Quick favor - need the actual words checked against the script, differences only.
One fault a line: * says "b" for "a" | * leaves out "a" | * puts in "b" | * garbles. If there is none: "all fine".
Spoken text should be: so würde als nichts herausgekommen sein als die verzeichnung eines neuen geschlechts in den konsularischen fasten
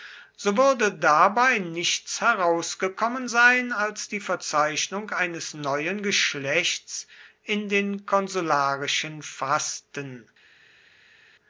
* says "dabei" for "als"